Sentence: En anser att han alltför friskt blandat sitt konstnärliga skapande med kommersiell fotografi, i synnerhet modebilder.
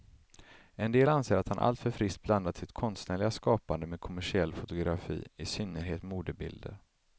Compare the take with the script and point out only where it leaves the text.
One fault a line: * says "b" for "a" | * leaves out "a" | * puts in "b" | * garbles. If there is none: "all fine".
* puts in "del"